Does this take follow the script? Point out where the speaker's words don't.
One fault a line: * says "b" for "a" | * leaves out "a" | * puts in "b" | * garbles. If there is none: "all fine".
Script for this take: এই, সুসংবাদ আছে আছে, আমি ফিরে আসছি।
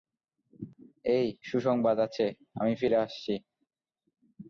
* leaves out "আছে"